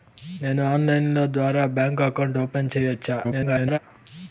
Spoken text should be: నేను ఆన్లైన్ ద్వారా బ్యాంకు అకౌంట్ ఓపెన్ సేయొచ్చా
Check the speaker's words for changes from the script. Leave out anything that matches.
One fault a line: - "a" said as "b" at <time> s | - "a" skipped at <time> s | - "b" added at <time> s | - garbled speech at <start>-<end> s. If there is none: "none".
- garbled speech at 3.2-3.8 s